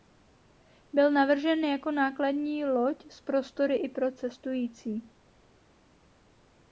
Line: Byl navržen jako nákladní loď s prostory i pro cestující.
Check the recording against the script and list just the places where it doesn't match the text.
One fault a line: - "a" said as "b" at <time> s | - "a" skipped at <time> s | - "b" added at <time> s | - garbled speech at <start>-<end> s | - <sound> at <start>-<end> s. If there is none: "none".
none